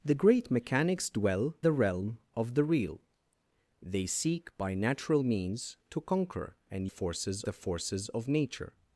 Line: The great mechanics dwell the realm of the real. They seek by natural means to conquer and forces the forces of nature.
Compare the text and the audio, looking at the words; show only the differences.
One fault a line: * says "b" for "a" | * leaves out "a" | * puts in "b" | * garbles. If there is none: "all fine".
all fine